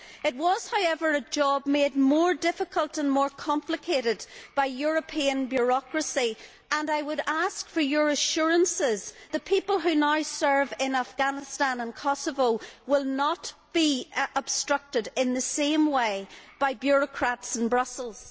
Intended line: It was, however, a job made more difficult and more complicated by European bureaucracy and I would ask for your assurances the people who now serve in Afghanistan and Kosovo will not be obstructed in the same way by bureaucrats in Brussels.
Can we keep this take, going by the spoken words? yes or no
yes